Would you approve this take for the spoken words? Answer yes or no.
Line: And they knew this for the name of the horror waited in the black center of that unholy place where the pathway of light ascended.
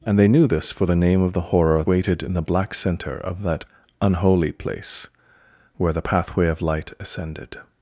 yes